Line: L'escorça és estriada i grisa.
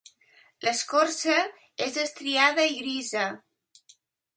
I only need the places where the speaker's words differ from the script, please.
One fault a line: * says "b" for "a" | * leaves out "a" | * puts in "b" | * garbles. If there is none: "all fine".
all fine